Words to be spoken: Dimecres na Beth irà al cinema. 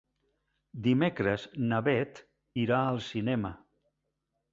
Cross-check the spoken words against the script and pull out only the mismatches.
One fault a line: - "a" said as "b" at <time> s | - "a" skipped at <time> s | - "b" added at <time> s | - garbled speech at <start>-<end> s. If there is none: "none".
none